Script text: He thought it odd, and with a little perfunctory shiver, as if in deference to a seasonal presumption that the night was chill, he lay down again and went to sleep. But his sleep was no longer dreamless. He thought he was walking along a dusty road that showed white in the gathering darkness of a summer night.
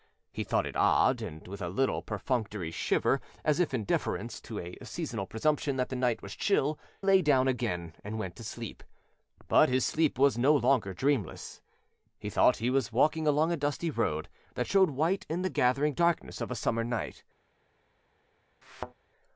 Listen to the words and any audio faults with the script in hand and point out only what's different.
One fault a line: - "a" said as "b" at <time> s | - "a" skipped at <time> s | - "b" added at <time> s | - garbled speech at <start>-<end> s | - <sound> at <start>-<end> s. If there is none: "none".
- "he" skipped at 6.8 s
- thud at 18.6-18.9 s